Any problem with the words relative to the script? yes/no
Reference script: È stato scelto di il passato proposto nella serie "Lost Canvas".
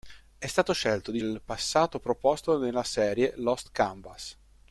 no